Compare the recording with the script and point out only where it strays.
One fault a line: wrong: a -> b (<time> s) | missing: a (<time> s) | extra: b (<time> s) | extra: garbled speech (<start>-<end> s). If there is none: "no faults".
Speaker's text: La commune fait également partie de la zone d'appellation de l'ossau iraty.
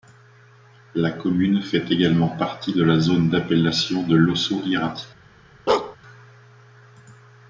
no faults